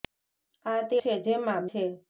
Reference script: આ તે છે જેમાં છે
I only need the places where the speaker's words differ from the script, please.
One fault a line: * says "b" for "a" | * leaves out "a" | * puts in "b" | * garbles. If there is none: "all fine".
all fine